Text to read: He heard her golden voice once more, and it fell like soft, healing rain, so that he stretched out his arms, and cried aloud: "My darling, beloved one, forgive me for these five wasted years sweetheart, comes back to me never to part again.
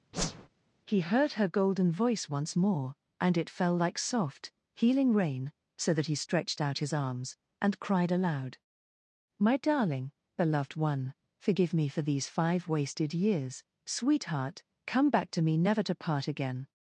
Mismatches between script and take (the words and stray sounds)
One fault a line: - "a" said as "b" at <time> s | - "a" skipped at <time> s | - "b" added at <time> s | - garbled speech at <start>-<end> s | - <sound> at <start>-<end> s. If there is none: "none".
- whoosh at 0.1-0.5 s
- "comes" said as "come" at 14.8 s